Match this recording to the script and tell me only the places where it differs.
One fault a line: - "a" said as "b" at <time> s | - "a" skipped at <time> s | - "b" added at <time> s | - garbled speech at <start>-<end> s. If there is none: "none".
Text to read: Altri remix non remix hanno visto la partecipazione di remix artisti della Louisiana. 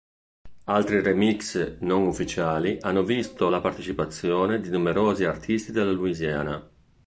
- "remix" said as "ufficiali" at 2.1 s
- "remix" said as "numerosi" at 4.7 s